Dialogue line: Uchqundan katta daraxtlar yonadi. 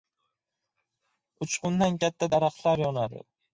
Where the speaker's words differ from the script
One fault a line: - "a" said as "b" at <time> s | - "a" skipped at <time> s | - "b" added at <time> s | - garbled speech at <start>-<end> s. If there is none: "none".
none